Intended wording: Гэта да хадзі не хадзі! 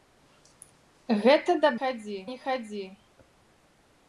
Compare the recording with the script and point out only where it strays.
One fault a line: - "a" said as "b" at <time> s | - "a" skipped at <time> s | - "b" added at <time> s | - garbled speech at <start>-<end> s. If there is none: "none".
none